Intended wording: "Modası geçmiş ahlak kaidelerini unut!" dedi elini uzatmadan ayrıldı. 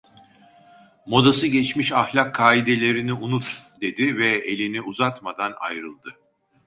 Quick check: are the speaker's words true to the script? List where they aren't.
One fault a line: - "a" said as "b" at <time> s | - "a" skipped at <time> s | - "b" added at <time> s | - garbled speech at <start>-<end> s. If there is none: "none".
- "ve" added at 4.2 s